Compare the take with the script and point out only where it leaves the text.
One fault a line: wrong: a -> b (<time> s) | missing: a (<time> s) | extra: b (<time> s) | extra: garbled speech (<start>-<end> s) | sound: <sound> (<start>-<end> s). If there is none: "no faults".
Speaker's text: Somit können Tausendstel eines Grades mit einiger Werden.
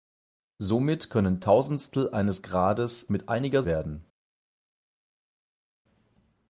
no faults